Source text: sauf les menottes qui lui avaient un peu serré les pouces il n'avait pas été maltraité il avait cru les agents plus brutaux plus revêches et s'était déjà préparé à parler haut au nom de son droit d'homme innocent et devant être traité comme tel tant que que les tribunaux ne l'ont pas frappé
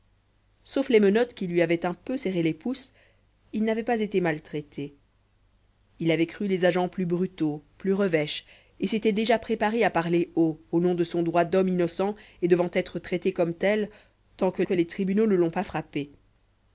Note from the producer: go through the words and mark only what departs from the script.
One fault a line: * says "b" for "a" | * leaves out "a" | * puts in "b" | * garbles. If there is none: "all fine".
all fine